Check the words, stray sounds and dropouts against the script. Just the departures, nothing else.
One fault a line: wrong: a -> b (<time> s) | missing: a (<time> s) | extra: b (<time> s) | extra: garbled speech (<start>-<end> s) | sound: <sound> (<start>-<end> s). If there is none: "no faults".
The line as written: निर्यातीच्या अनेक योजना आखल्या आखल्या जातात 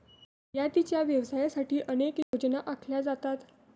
extra: व्यवसायासाठी (1.0 s)
sound: dropout (2.2-2.3 s)
missing: आखल्या (3.0 s)